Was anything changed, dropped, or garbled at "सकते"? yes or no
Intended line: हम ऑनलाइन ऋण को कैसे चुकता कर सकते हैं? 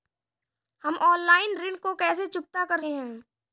yes